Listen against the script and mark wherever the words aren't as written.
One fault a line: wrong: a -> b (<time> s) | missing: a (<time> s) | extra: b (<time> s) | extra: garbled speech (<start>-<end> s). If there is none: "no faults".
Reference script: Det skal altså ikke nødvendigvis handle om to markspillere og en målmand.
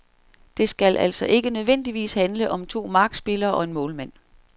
no faults